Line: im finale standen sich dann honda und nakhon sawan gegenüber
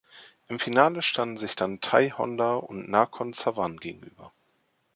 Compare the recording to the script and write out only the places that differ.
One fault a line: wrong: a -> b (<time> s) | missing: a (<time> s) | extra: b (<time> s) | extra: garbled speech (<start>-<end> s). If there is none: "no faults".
extra: thai (1.8 s)